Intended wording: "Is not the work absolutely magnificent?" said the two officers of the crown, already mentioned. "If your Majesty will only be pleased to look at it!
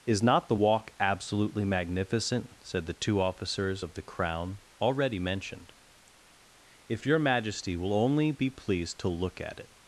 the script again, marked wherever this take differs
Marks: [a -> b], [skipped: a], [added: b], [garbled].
"Is not the [work -> walk] absolutely magnificent?" said the two officers of the crown, already mentioned. "If your Majesty will only be pleased to look at it!